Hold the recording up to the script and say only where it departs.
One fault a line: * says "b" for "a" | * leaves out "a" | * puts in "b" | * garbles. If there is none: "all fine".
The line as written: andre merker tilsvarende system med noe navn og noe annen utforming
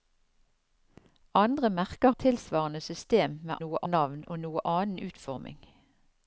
all fine